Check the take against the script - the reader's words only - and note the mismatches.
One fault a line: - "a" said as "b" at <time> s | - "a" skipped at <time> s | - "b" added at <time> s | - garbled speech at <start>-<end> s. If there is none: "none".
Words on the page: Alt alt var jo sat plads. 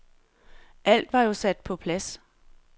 - "alt" skipped at 1.1 s
- "på" added at 1.6 s